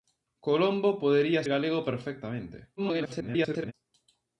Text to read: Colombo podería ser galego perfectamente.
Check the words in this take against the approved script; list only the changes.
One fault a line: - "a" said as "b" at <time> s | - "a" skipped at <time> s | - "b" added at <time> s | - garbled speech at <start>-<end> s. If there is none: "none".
- "ser" skipped at 1.4 s
- garbled speech at 2.8-3.7 s